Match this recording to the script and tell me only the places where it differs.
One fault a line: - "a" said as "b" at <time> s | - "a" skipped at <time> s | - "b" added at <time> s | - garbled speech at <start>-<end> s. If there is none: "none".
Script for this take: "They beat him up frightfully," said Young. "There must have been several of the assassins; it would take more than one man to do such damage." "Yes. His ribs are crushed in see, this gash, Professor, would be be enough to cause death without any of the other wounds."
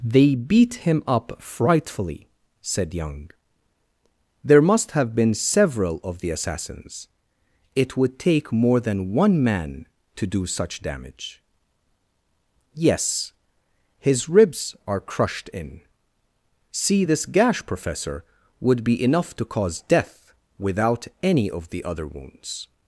- "be" skipped at 19.0 s